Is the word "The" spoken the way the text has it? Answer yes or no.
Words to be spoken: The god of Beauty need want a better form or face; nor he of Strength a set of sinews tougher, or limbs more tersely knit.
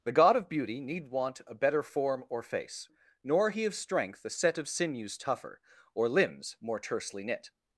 yes